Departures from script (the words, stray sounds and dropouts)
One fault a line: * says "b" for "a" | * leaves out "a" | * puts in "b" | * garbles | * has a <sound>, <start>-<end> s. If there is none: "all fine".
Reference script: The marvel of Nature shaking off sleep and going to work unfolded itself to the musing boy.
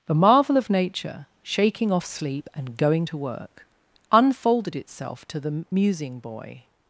all fine